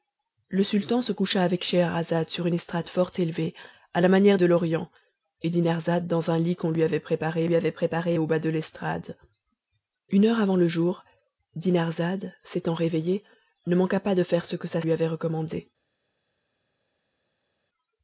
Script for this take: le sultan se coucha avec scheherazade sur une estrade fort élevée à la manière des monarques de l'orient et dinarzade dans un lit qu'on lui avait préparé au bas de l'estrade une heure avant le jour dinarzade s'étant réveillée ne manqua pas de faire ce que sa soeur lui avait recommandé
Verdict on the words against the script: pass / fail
fail